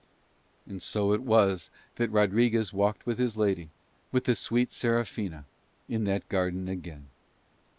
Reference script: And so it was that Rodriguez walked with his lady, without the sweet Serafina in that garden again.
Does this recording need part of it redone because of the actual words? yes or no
yes